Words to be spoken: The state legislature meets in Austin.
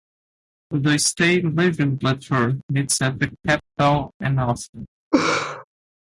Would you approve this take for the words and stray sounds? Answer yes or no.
no